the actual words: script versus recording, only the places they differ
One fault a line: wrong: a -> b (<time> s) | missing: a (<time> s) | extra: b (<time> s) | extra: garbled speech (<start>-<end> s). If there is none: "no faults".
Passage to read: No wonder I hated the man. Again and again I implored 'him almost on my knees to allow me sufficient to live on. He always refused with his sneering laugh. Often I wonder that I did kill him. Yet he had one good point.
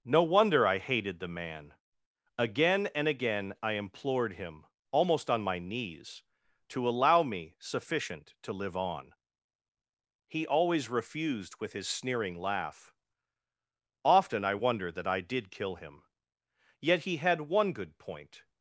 no faults